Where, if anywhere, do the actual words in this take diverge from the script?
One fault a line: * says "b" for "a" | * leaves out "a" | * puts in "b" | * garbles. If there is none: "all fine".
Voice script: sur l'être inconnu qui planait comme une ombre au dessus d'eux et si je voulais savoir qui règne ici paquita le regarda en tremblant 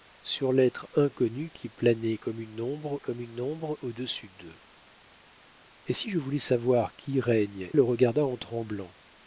* puts in "comme une ombre"
* leaves out "ici paquita"